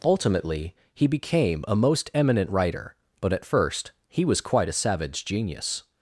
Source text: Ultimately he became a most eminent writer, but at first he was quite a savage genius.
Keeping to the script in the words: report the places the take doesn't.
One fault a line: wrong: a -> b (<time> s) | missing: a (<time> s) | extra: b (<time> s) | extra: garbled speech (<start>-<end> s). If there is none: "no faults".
no faults